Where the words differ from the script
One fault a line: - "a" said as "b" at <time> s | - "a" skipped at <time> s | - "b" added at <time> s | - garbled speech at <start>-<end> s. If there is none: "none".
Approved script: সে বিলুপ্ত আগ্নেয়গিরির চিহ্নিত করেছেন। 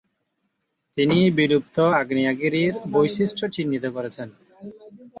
- "সে" said as "তিনি" at 1.0 s
- "বৈশিষ্ট্য" added at 2.9 s